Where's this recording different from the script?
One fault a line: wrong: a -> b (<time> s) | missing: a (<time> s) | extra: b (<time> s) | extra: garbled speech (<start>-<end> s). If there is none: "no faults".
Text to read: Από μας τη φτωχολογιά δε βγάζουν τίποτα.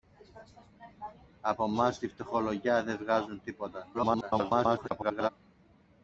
extra: garbled speech (3.9-5.3 s)